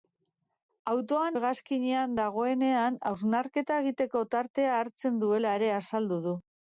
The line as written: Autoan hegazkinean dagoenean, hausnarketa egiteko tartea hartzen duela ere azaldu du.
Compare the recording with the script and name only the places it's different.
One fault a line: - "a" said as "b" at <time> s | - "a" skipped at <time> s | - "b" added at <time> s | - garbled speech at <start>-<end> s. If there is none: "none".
none